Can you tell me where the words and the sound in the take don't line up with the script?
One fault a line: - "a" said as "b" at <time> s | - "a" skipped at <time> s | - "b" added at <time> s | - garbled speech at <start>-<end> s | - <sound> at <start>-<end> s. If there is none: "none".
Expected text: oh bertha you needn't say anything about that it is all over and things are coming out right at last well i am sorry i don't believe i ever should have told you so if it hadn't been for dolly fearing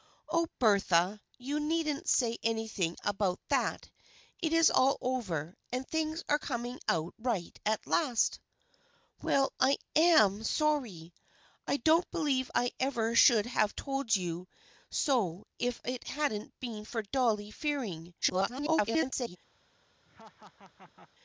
- garbled speech at 18.2-19.4 s
- laugh at 20.1-21.1 s